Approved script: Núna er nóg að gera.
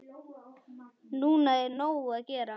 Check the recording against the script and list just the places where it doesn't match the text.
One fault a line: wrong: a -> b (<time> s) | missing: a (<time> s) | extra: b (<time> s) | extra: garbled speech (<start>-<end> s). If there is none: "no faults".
no faults